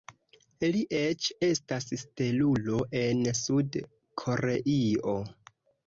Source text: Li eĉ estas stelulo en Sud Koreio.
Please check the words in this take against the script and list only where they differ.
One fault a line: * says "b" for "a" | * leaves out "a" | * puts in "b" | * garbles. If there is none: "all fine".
all fine